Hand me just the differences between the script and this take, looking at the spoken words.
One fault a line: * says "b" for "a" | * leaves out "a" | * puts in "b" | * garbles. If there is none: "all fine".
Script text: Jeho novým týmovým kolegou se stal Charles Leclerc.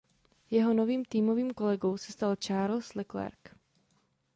all fine